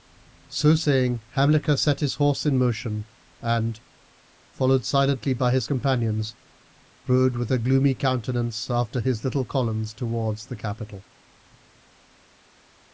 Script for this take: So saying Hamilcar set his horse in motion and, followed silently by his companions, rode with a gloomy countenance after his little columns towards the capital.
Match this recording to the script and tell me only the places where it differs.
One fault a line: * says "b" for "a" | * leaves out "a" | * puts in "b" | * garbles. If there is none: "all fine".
all fine